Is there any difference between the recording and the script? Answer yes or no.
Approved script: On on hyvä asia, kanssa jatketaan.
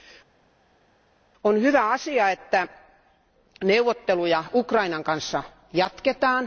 yes